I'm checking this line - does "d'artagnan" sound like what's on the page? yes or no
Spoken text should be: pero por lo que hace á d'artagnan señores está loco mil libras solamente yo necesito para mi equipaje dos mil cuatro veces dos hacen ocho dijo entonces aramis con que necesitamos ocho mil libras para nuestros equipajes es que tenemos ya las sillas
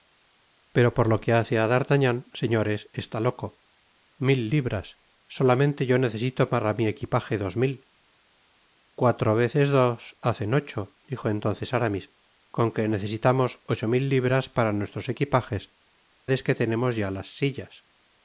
yes